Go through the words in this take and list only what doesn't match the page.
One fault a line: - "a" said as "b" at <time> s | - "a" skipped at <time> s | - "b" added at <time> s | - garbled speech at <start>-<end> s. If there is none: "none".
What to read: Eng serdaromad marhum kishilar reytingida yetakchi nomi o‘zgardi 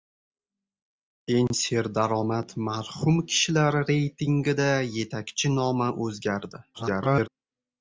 - garbled speech at 6.7-7.3 s